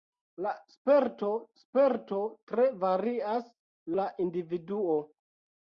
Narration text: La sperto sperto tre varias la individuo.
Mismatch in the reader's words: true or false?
false